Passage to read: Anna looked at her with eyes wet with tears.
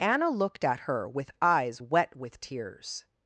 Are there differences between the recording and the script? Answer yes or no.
no